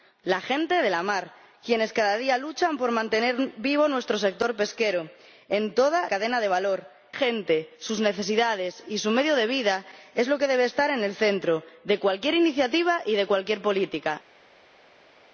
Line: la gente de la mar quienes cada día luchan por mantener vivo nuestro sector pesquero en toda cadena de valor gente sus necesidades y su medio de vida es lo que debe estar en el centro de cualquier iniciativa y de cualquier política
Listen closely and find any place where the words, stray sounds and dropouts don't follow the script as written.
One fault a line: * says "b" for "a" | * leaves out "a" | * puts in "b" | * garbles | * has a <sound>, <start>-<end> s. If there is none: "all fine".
all fine